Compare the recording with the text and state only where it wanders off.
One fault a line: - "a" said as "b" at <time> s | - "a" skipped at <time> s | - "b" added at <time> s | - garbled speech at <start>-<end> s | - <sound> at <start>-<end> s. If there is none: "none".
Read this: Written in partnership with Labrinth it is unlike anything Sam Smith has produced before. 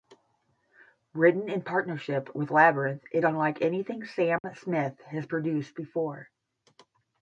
- "is" skipped at 3.2 s
- dropout at 4.4-4.4 s